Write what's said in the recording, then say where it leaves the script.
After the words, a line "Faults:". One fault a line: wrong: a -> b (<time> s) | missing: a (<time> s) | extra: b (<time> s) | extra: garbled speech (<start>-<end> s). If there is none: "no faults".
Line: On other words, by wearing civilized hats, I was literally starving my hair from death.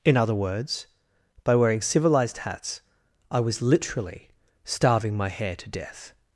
In other words, by wearing civilized hats, I was literally starving my hair to death.
Faults:
wrong: On -> In (0.0 s)
wrong: from -> to (5.5 s)